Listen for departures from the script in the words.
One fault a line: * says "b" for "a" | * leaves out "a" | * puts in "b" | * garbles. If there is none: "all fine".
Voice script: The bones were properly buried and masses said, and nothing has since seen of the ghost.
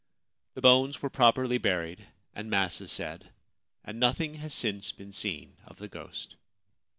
* puts in "been"